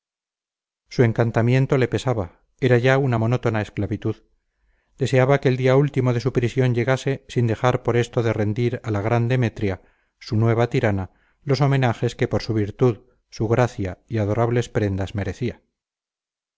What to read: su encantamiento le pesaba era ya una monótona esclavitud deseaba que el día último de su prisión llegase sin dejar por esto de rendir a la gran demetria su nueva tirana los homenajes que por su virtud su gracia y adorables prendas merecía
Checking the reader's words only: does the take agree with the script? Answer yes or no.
yes